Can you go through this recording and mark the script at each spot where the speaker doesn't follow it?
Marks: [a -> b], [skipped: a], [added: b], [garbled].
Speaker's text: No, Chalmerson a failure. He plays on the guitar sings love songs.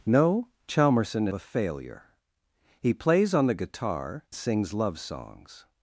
No, Chalmerson a failure. He plays on the guitar sings love songs.